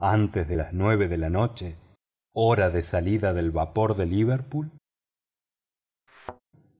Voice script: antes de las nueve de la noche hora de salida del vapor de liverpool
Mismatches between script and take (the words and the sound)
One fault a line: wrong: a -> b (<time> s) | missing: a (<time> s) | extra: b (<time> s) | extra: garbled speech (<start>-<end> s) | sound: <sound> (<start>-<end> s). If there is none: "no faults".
sound: thud (6.1-6.4 s)